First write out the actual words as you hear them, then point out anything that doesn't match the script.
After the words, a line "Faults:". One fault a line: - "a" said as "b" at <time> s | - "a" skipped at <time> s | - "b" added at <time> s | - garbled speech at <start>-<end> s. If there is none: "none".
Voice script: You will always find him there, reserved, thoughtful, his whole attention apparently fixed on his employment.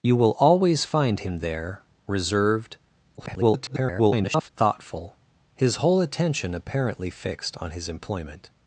You will always find him there, reserved, [garbled] thoughtful, his whole attention apparently fixed on his employment.
Faults:
- garbled speech at 3.2-4.5 s